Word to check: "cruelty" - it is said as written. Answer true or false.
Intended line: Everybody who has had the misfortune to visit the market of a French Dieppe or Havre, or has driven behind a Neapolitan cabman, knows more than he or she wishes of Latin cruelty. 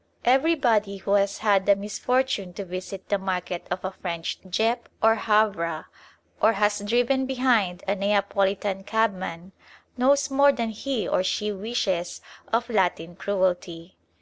true